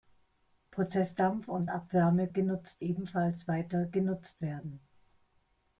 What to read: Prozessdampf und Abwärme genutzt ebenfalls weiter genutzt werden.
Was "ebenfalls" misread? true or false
false